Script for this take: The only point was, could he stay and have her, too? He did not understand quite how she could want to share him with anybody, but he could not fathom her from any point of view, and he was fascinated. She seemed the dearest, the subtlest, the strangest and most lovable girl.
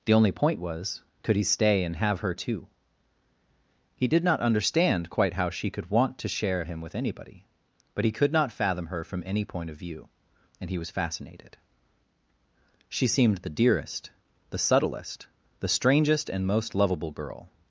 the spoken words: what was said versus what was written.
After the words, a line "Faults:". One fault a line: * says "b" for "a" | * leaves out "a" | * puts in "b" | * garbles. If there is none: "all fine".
The only point was, could he stay and have her, too? He did not understand quite how she could want to share him with anybody, but he could not fathom her from any point of view, and he was fascinated. She seemed the dearest, the subtlest, the strangest and most lovable girl.
Faults:
all fine